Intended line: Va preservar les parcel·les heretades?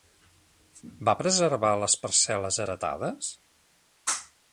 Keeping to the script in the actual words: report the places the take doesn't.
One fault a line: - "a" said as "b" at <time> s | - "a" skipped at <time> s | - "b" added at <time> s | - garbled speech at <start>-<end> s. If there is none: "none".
none